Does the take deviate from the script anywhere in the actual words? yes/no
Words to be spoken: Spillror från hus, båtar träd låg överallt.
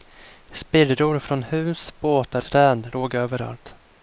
no